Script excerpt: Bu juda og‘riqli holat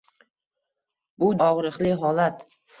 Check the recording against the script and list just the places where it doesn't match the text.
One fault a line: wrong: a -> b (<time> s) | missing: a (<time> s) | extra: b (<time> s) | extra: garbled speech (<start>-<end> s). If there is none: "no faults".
missing: juda (1.3 s)